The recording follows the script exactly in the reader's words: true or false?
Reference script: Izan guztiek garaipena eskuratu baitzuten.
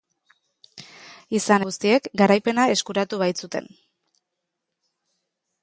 true